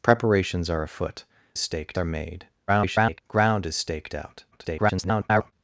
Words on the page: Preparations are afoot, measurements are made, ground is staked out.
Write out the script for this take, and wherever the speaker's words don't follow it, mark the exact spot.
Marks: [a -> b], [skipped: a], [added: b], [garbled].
Preparations are afoot, [measurements -> staked] are made, [garbled] ground is staked out. [garbled]